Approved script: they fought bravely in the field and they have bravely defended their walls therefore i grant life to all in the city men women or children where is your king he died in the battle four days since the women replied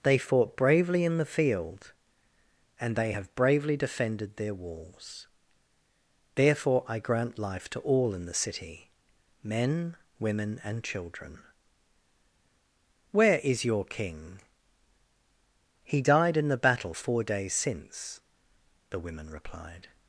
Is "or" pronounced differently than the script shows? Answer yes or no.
yes